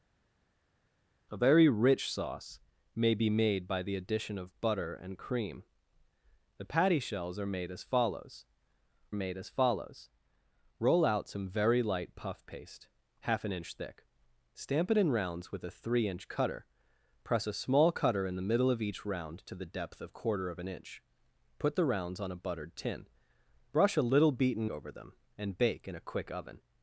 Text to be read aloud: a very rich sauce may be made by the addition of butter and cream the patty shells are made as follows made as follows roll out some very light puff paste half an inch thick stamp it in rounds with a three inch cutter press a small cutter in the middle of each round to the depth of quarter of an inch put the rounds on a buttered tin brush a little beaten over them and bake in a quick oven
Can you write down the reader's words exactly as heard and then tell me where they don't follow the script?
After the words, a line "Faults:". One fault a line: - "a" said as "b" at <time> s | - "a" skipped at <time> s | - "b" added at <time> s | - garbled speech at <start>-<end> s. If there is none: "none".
a very rich sauce may be made by the addition of butter and cream the patty shells are made as follows made as follows roll out some very light puff paste half an inch thick stamp it in rounds with a three inch cutter press a small cutter in the middle of each round to the depth of quarter of an inch put the rounds on a buttered tin brush a little beaten over them and bake in a quick oven
Faults:
none